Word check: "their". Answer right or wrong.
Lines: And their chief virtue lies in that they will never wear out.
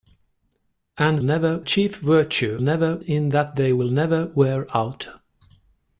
wrong